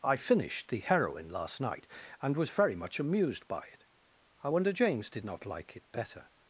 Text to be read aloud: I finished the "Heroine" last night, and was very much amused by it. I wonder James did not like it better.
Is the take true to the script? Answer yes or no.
yes